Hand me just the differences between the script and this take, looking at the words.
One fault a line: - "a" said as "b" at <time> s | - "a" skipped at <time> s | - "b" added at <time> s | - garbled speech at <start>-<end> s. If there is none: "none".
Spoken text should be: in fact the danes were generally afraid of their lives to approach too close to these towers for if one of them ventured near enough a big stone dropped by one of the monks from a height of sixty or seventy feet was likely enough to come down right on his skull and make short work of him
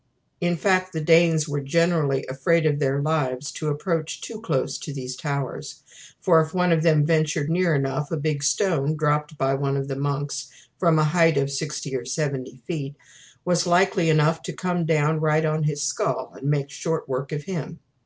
none